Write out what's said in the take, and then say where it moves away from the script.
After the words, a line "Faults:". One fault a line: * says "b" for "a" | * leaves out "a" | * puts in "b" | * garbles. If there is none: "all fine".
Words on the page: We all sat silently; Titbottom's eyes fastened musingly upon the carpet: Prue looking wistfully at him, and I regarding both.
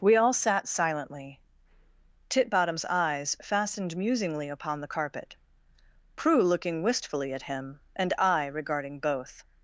We all sat silently; Titbottom's eyes fastened musingly upon the carpet: Prue looking wistfully at him, and I regarding both.
Faults:
all fine